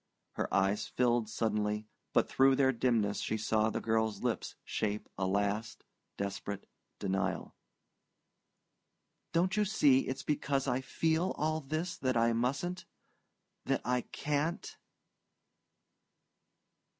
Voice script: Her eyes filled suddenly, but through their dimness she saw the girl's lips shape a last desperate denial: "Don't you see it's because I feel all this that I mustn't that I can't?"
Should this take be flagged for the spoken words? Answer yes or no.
no